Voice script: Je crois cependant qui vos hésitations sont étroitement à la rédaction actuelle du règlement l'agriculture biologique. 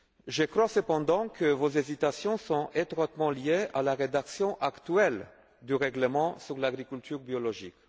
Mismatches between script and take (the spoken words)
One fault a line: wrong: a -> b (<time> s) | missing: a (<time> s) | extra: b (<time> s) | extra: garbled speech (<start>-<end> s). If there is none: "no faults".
wrong: qui -> que (1.3 s)
extra: liées (3.3 s)
extra: sur (6.4 s)